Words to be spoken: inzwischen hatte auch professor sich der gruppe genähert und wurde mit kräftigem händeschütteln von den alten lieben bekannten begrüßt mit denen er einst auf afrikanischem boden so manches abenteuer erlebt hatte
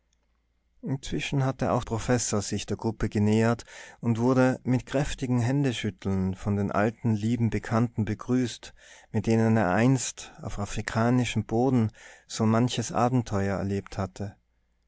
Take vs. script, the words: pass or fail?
pass